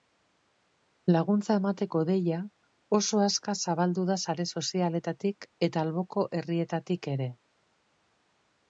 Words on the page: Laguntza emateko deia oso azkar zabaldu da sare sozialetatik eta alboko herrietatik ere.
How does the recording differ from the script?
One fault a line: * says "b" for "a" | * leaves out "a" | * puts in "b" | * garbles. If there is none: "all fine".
all fine